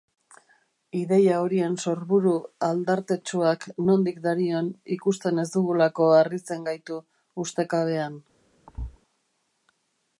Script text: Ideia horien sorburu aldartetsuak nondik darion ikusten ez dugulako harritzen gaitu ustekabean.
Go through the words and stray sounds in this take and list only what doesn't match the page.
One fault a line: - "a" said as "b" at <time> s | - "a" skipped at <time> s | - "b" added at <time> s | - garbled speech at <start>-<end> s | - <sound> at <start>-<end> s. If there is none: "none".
- thud at 8.7-9.0 s